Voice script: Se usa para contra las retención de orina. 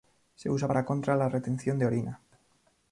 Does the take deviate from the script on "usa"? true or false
false